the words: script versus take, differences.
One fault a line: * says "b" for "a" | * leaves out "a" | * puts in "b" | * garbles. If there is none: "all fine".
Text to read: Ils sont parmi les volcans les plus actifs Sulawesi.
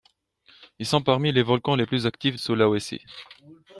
all fine